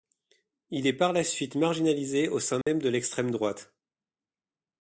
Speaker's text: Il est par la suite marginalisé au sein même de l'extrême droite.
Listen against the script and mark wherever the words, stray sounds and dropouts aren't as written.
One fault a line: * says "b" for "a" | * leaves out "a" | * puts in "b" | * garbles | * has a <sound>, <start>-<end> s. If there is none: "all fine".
* has a dropout, 2.6-2.7 s